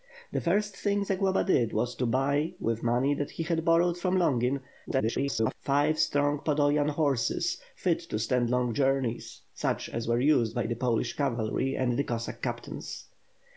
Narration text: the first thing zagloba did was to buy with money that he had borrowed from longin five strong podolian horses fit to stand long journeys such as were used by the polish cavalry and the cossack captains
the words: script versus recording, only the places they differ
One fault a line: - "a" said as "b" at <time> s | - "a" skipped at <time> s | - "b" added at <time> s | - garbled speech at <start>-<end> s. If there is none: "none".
- garbled speech at 4.9-5.6 s